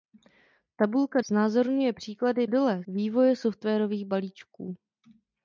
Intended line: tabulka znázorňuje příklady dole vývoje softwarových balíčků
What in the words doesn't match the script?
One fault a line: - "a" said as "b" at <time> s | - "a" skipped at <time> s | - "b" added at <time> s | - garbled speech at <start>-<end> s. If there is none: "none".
none